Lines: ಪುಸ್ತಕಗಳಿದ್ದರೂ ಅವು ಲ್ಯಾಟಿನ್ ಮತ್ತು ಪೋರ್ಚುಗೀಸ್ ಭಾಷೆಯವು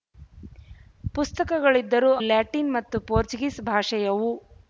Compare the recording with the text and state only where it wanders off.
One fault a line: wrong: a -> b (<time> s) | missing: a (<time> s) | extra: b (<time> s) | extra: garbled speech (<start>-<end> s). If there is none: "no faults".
missing: ಅವು (2.1 s)